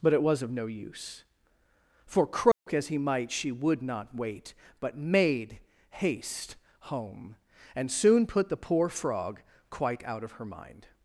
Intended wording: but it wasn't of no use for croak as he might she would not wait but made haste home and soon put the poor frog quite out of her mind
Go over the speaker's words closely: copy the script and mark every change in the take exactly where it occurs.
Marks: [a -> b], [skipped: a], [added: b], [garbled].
but it [wasn't -> was] of no use for croak as he might she would not wait but made haste home and soon put the poor frog quite out of her mind